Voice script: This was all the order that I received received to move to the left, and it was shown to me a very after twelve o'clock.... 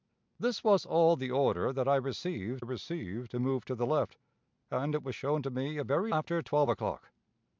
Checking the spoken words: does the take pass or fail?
pass